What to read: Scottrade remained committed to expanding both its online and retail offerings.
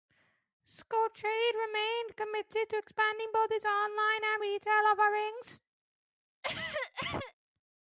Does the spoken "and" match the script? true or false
true